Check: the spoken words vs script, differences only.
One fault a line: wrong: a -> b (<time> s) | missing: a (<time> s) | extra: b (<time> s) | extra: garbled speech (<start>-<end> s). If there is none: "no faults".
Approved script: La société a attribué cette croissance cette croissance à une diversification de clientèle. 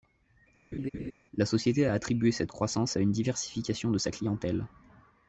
missing: cette croissance (3.0 s)
extra: sa (4.0 s)